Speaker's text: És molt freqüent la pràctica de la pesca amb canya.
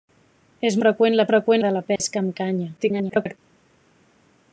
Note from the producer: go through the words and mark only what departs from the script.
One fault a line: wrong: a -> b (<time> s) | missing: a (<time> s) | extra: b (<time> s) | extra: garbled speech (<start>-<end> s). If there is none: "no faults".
missing: molt (0.8 s)
wrong: pràctica -> freqüent (1.3 s)
extra: garbled speech (2.8-3.4 s)